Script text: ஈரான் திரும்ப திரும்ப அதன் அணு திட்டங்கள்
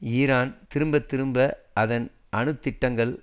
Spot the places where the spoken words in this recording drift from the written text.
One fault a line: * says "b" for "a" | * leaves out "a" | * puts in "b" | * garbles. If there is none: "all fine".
all fine